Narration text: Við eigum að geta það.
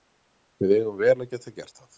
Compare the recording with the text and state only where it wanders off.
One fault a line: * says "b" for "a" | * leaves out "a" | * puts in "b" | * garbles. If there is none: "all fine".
* puts in "vel"
* puts in "gert"